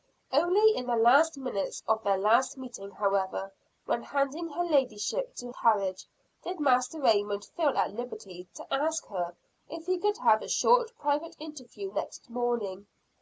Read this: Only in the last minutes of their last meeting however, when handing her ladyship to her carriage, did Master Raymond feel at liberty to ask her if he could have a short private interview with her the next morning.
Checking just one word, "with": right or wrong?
wrong